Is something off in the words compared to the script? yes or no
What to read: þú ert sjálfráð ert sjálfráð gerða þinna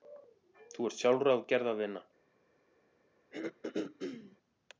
yes